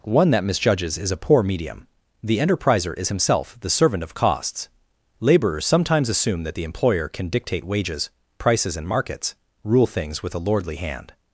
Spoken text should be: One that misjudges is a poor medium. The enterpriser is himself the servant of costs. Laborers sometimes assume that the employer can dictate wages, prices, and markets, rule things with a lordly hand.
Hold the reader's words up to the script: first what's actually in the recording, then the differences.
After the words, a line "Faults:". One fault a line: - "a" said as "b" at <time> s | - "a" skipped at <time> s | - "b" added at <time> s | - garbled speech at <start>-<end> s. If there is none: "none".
One that misjudges is a poor medium. The enterpriser is himself the servant of costs. Laborers sometimes assume that the employer can dictate wages, prices, and markets, rule things with a lordly hand.
Faults:
none